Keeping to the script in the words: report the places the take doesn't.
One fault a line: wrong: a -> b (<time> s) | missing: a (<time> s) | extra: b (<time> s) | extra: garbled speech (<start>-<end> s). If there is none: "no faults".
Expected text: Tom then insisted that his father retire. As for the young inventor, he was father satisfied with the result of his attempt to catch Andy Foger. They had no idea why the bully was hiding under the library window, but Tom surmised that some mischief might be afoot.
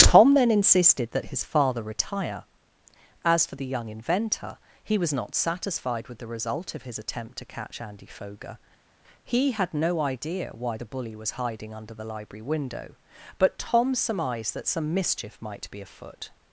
wrong: father -> not (5.1 s)
wrong: They -> He (9.2 s)